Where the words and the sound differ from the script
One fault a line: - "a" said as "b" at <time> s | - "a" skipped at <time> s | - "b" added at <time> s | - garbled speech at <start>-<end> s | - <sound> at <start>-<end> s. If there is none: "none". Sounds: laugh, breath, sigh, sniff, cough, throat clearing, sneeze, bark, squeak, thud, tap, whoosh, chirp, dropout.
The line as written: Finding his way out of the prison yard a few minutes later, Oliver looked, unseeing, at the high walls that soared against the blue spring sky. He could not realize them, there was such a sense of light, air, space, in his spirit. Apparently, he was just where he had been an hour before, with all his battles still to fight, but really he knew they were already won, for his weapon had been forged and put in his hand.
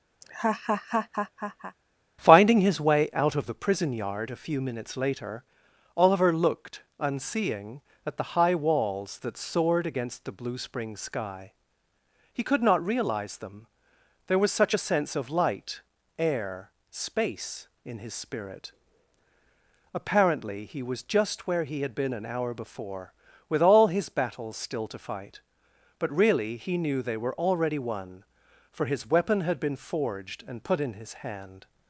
- laugh at 0.2-1.8 s